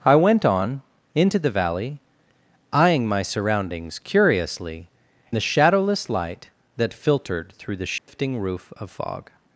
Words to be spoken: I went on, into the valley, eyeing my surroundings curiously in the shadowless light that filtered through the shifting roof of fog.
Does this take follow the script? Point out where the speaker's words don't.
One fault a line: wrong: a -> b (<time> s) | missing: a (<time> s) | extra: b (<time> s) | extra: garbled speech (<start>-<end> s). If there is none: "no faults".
missing: in (4.9 s)